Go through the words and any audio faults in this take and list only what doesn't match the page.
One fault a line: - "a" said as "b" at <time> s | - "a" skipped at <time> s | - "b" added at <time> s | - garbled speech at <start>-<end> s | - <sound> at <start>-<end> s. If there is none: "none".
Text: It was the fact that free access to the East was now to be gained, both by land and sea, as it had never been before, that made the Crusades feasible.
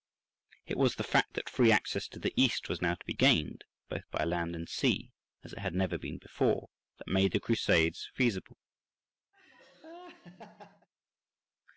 - laugh at 9.3-10.9 s